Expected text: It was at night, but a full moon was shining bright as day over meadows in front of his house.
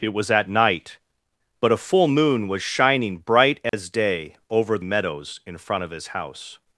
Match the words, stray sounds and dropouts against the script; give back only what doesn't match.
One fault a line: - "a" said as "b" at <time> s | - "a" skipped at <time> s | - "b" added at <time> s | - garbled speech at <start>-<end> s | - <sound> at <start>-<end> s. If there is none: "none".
- dropout at 3.7-3.7 s